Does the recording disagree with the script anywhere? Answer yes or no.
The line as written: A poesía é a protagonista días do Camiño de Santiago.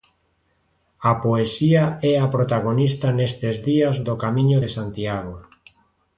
yes